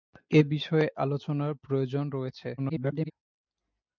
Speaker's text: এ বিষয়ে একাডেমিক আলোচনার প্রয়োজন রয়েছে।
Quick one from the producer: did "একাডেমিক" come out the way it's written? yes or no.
no